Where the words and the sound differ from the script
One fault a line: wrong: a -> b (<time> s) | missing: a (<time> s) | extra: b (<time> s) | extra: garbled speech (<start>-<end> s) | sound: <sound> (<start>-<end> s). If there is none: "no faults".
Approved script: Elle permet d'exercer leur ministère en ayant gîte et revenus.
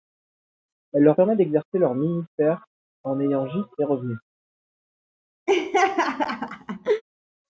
extra: leur (1.0 s)
sound: laugh (5.5-7.0 s)